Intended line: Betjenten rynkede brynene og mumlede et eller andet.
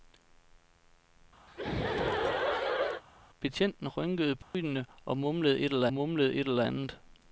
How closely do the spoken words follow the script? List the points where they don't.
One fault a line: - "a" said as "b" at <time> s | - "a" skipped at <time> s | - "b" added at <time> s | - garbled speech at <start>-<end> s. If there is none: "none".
- "mumlede et eller" added at 5.9 s